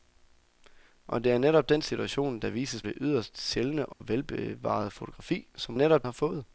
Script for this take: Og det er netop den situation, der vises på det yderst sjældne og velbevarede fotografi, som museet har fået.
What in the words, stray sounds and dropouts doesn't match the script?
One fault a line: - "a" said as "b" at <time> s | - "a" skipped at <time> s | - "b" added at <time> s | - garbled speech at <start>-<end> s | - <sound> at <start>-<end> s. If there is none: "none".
- "på" skipped at 2.8 s
- dropout at 3.9-4.0 s
- "museet" said as "netop" at 5.7 s